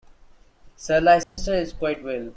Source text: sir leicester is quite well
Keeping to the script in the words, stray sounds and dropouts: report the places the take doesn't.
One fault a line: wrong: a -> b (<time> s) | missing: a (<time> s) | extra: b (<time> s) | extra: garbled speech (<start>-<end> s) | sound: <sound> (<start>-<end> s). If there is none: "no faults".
sound: dropout (1.2-1.4 s)